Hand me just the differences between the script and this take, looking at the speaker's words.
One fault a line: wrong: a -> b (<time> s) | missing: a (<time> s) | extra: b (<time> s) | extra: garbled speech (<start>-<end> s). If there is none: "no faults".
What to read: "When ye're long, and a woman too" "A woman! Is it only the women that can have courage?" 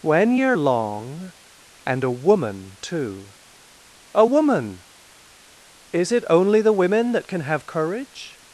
no faults